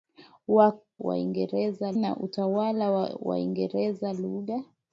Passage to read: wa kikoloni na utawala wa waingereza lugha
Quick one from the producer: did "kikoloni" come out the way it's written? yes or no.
no